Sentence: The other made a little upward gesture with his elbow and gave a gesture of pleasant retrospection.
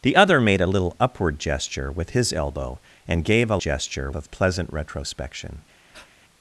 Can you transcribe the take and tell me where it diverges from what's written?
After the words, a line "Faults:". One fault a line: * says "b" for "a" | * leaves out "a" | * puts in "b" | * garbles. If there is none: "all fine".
The other made a little upward gesture with his elbow and gave a gesture of pleasant retrospection.
Faults:
all fine